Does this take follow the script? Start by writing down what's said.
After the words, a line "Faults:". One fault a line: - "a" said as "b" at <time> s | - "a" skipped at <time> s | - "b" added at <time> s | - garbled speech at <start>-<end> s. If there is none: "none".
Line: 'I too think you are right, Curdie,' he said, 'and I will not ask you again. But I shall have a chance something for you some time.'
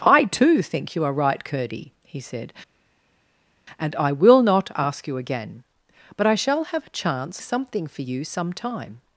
'I too think you are right, Curdie,' he said, 'and I will not ask you again. But I shall have a chance something for you some time.'
Faults:
none